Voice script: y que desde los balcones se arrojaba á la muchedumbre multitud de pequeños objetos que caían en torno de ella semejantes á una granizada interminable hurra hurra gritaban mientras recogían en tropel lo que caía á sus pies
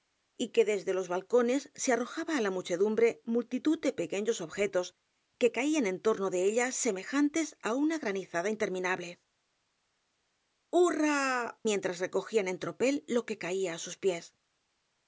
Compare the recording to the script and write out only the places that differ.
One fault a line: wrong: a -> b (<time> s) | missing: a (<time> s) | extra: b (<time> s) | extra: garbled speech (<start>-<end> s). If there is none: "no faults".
missing: hurra gritaban (11.2 s)